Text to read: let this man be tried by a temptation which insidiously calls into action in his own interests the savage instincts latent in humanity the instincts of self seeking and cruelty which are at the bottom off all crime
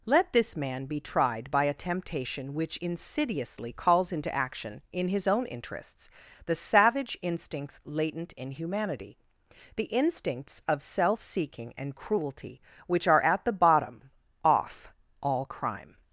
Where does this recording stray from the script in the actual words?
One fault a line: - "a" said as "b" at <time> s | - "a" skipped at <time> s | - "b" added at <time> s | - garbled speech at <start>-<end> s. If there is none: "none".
none